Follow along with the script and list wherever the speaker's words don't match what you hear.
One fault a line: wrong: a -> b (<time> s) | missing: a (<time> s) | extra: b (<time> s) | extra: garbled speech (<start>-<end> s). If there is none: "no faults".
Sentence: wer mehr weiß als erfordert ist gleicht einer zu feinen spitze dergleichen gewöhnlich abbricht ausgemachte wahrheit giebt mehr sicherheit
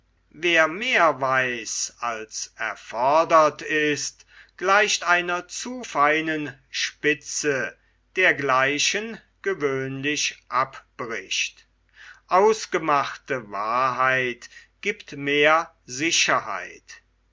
no faults